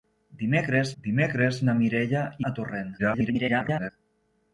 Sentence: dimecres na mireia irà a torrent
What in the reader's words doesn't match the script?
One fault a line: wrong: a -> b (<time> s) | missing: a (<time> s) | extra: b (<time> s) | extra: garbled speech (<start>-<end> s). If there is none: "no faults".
extra: dimecres (1.0 s)
missing: irà (2.2 s)
extra: garbled speech (3.0-3.9 s)